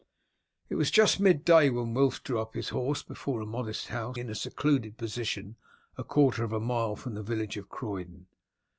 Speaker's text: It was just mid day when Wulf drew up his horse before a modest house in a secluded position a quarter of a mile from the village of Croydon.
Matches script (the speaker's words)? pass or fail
pass